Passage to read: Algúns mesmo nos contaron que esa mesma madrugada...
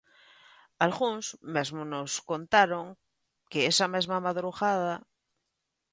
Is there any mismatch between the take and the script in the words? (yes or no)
no